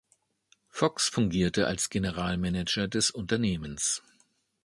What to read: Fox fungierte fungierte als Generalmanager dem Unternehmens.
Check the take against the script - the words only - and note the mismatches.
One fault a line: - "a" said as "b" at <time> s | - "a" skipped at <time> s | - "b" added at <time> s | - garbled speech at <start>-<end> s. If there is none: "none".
- "fungierte" skipped at 1.7 s
- "dem" said as "des" at 2.9 s